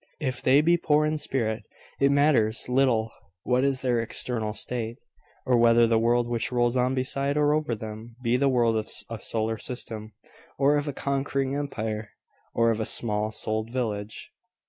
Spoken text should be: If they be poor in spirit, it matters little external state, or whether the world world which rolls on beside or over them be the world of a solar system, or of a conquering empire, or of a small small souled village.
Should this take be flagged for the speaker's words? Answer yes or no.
yes